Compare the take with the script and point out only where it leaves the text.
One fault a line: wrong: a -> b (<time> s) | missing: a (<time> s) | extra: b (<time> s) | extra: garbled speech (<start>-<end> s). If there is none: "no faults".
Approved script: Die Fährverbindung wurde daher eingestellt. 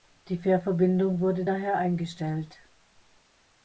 no faults